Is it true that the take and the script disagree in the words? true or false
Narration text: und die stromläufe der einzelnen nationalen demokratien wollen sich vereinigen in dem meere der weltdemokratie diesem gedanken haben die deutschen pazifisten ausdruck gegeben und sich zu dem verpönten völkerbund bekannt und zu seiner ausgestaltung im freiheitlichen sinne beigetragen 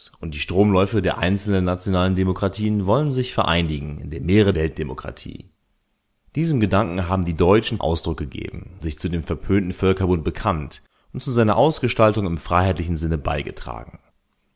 true